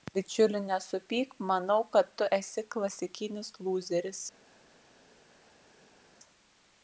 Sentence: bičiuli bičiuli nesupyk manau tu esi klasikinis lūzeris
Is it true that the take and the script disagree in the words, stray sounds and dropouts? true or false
true